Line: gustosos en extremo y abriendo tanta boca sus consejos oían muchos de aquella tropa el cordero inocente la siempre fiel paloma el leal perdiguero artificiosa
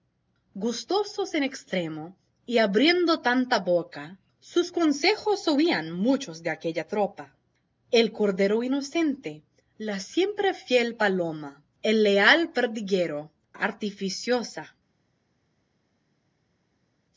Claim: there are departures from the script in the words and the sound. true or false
false